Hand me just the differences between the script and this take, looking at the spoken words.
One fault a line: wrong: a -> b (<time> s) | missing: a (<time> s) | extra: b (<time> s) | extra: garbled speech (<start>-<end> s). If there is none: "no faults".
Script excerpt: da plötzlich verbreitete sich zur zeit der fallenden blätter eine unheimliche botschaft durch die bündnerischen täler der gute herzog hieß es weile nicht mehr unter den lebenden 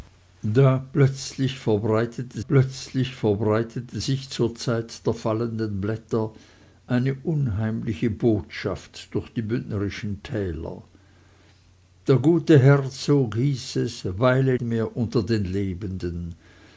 extra: plötzlich verbreitete (2.5 s)
missing: nicht (14.6 s)